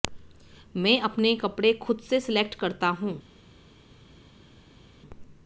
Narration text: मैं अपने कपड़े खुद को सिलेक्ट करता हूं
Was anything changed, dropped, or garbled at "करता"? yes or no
no